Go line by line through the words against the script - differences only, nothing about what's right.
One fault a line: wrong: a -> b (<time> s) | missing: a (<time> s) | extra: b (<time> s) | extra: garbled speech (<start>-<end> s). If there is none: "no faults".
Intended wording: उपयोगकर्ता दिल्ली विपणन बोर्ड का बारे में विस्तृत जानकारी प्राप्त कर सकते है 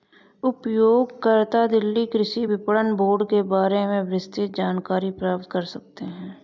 extra: कृषि (2.1 s)
wrong: का -> के (3.3 s)